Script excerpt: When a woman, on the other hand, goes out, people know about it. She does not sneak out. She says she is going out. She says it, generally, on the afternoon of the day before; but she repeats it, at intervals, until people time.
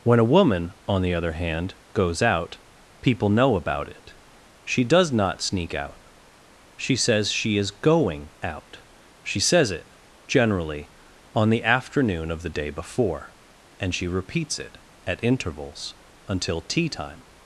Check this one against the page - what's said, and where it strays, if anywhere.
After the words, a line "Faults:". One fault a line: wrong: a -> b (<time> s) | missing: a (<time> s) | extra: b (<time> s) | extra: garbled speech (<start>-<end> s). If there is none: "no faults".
When a woman, on the other hand, goes out, people know about it. She does not sneak out. She says she is going out. She says it, generally, on the afternoon of the day before; and she repeats it, at intervals, until tea time.
Faults:
wrong: but -> and (13.8 s)
wrong: people -> tea (16.6 s)